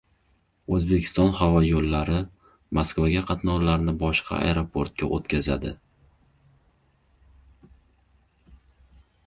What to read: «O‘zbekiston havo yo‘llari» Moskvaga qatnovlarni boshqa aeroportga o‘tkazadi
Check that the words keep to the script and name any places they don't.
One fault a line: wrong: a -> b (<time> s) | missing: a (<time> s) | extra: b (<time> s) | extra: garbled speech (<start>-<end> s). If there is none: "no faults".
no faults